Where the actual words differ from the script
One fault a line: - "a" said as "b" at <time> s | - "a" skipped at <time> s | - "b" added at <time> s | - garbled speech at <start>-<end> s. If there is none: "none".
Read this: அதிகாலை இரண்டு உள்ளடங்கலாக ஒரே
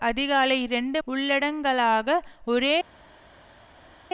none